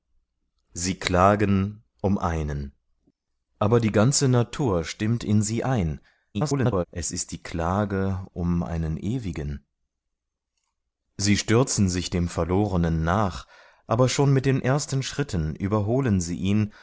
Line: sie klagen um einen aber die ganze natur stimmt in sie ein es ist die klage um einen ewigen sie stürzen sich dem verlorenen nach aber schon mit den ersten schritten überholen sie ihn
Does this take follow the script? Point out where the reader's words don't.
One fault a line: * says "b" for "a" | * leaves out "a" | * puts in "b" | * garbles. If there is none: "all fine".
* garbles